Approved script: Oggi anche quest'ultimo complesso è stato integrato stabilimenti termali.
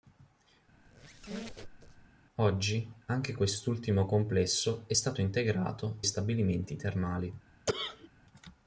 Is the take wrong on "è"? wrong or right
right